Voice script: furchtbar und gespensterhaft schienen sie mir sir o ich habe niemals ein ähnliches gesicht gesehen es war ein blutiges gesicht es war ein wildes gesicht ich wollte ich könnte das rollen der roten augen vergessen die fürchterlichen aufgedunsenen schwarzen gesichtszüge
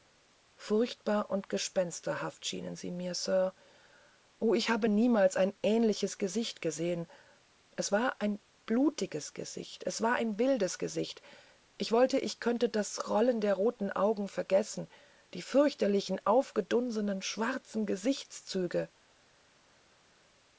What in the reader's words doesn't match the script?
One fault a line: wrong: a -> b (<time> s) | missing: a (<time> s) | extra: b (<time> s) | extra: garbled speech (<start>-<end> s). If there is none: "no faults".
no faults